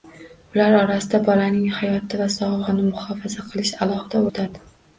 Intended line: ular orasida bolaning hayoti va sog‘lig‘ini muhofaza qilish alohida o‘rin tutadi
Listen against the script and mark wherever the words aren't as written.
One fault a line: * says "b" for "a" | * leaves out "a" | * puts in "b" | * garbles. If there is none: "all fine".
* leaves out "o‘rin"